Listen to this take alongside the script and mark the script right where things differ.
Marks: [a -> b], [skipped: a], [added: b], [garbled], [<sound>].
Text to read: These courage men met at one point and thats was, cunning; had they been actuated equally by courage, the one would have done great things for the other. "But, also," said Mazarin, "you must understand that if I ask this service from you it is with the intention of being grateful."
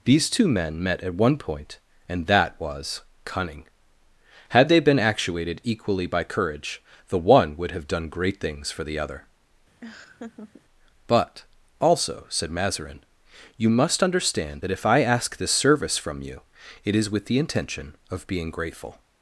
These [courage -> two] men met at one point and [thats -> that] was, cunning; had they been actuated equally by courage, the one would have done great things for the other. [laugh] "But, also," said Mazarin, "you must understand that if I ask this service from you it is with the intention of being grateful."